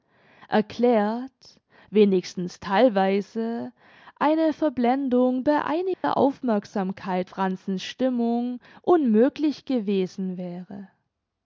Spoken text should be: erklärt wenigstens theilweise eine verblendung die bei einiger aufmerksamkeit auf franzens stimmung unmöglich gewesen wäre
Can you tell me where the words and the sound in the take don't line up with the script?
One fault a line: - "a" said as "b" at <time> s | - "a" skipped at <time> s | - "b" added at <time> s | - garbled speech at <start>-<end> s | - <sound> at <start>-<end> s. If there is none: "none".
- "die" skipped at 5.4 s
- dropout at 5.9-6.0 s
- "auf" skipped at 7.3 s